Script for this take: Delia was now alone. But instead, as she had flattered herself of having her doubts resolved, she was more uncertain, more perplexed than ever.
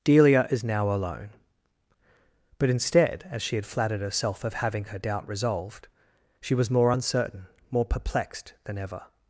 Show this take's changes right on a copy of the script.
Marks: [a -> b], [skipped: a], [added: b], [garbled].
Delia [was -> is] now alone. But instead, as she had flattered herself of having her [doubts -> doubt] resolved, she was more uncertain, more perplexed than ever.